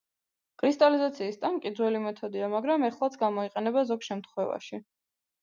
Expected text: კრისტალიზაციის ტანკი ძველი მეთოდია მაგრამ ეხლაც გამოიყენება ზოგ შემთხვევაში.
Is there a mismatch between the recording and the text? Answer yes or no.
no